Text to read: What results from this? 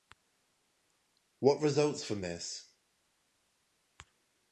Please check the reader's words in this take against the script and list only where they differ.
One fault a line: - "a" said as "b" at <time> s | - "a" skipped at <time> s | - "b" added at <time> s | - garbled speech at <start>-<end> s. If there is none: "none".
none